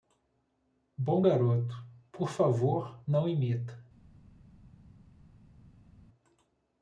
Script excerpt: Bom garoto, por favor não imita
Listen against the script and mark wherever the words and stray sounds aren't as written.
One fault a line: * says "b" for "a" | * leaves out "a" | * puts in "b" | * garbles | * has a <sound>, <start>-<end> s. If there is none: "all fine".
all fine